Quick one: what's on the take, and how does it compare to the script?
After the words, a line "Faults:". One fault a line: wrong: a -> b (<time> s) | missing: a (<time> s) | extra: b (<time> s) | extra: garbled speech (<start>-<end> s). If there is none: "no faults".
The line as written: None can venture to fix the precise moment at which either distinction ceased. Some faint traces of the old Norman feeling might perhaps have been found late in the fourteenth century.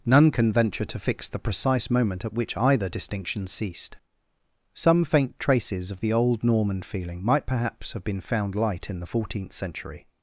None can venture to fix the precise moment at which either distinction ceased. Some faint traces of the old Norman feeling might perhaps have been found light in the fourteenth century.
Faults:
wrong: late -> light (8.6 s)